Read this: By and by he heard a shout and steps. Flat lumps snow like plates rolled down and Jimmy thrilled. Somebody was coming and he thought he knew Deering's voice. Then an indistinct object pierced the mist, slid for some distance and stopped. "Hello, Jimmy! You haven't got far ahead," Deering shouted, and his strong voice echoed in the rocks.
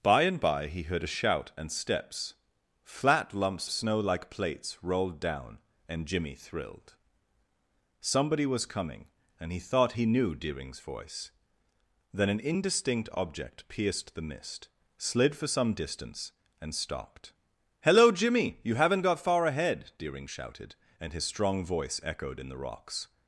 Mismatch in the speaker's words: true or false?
false